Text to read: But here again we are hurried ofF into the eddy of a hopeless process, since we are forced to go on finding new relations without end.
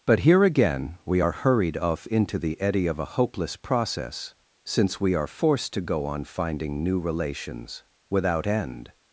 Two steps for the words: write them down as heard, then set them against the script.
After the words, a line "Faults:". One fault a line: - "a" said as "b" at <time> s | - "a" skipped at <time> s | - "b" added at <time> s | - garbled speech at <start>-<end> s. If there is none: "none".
But here again we are hurried ofF into the eddy of a hopeless process, since we are forced to go on finding new relations without end.
Faults:
none